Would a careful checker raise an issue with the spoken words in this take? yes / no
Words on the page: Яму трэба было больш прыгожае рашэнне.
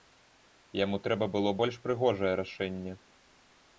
no